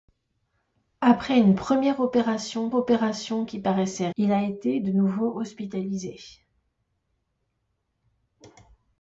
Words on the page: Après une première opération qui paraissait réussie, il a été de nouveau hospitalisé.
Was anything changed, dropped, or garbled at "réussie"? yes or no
yes